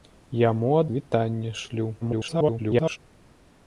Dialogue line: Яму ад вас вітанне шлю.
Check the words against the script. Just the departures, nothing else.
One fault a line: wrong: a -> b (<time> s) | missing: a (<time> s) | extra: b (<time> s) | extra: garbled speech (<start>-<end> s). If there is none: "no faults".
missing: вас (0.9 s)
extra: garbled speech (2.0-3.0 s)